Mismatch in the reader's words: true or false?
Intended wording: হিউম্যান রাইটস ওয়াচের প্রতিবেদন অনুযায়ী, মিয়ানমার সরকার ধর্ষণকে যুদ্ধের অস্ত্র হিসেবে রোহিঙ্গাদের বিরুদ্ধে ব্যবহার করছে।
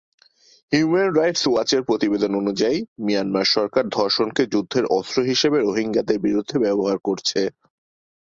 false